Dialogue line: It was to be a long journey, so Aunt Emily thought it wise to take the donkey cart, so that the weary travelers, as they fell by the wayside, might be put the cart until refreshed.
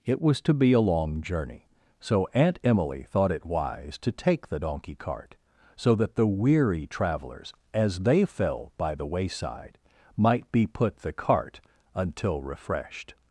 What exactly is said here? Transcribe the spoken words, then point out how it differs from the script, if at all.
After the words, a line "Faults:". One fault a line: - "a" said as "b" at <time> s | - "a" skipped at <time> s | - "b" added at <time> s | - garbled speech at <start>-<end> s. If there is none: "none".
It was to be a long journey, so Aunt Emily thought it wise to take the donkey cart, so that the weary travelers, as they fell by the wayside, might be put the cart until refreshed.
Faults:
none